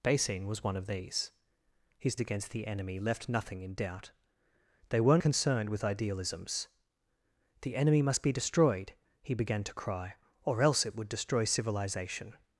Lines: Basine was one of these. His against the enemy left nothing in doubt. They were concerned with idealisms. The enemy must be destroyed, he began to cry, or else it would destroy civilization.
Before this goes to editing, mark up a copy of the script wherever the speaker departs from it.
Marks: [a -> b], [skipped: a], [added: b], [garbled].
Basine was one of these. His against the enemy left nothing in doubt. They were concerned with idealisms. The enemy must be destroyed, he began to cry, or else it would destroy civilization.